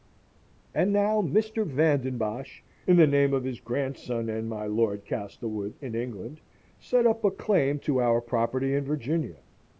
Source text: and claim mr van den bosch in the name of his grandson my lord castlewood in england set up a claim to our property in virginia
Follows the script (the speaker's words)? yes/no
no